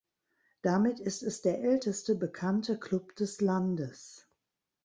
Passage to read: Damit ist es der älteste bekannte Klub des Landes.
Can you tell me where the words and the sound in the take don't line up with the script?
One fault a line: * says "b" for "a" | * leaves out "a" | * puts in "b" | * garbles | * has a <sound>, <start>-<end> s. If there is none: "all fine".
all fine